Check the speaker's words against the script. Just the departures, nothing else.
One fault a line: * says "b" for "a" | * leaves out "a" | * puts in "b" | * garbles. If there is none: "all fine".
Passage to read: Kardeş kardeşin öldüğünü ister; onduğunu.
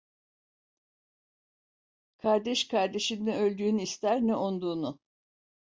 * puts in "ne"
* puts in "ne"